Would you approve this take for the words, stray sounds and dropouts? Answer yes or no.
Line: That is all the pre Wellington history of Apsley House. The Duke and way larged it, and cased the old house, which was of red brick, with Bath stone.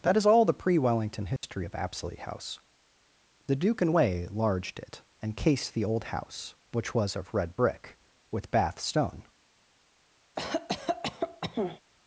no